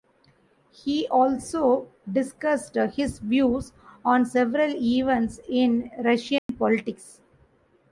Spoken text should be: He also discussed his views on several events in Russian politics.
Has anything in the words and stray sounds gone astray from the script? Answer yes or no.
yes